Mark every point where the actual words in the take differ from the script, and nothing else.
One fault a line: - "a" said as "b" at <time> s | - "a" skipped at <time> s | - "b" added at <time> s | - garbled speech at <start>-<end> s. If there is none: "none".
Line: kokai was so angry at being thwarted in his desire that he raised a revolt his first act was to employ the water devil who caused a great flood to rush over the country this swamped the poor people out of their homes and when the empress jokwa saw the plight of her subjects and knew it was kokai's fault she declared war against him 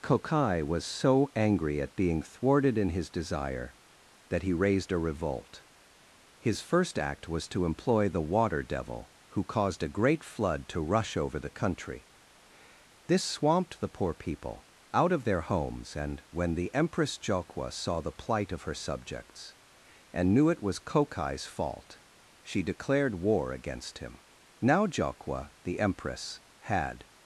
- "now jokwa the empress had" added at 24.6 s